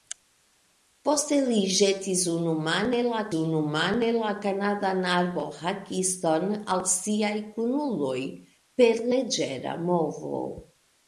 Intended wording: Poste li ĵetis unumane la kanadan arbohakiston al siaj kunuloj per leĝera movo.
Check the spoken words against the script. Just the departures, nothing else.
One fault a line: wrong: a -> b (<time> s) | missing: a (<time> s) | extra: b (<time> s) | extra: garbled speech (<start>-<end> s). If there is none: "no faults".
extra: unumane la (3.4 s)